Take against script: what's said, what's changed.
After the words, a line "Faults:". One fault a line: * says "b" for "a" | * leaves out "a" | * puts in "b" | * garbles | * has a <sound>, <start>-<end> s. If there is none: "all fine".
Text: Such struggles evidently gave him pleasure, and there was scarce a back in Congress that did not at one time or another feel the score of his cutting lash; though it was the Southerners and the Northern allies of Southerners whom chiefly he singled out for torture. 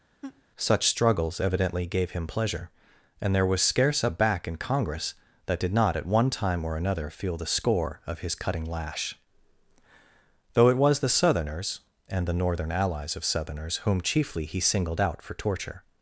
Such struggles evidently gave him pleasure, and there was scarce a back in Congress that did not at one time or another feel the score of his cutting lash; though it was the Southerners and the Northern allies of Southerners whom chiefly he singled out for torture.
Faults:
* has a laugh, 0.2-0.4 s